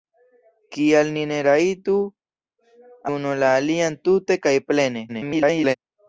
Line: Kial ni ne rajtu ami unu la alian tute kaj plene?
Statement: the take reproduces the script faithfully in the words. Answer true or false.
false